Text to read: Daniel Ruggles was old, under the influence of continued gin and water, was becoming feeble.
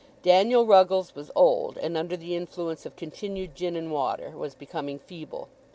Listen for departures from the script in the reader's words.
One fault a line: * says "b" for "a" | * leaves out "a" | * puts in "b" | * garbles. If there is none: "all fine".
* puts in "and"